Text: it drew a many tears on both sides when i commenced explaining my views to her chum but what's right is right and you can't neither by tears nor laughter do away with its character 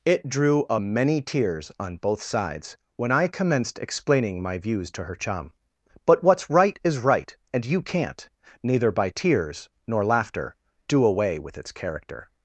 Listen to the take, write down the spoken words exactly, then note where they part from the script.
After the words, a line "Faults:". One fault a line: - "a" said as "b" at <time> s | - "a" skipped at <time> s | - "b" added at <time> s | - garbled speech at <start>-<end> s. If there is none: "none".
it drew a many tears on both sides when i commenced explaining my views to her chum but what's right is right and you can't neither by tears nor laughter do away with its character
Faults:
none